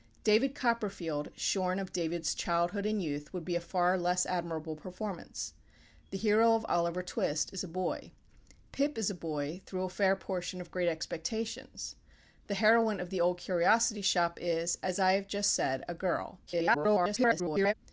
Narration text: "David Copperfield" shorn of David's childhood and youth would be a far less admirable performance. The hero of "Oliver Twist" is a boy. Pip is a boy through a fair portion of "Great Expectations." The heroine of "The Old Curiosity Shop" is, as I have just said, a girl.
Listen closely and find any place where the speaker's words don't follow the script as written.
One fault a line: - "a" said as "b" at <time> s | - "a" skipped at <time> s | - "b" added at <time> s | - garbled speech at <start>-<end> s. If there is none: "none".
- garbled speech at 16.5-17.7 s